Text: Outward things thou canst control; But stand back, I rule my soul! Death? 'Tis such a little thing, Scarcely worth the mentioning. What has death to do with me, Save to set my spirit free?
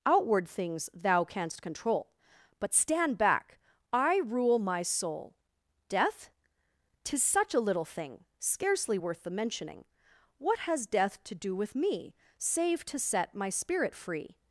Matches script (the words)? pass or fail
pass